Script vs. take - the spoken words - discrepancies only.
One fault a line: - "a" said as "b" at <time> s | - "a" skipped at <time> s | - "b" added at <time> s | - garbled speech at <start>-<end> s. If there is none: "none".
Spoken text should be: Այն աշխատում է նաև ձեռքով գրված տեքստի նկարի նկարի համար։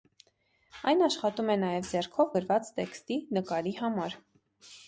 - "նկարի" skipped at 3.8 s